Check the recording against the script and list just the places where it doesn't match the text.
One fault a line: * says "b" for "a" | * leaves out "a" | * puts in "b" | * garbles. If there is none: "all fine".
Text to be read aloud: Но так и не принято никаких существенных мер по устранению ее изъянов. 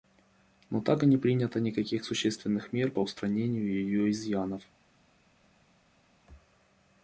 all fine